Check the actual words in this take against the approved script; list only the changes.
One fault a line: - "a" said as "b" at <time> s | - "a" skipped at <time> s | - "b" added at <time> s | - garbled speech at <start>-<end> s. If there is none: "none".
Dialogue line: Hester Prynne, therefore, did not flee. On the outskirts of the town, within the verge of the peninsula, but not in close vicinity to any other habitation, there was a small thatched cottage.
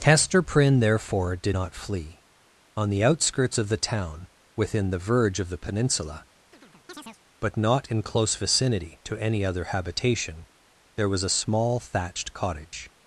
none